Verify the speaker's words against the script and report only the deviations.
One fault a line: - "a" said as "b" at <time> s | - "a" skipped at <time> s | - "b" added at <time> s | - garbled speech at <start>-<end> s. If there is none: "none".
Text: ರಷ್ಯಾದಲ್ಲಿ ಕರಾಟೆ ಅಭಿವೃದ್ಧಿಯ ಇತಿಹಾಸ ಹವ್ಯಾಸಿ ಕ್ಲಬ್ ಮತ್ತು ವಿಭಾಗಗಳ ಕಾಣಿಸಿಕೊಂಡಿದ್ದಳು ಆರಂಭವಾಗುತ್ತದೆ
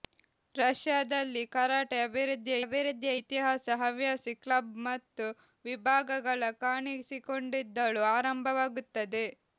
- "ಅಭಿವೃದ್ಧಿಯ" added at 2.6 s